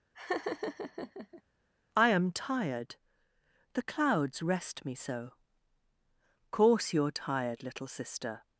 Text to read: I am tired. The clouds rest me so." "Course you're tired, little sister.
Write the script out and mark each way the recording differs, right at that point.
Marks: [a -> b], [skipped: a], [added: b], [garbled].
I am tired. The clouds rest me so." "Course you're tired, little sister.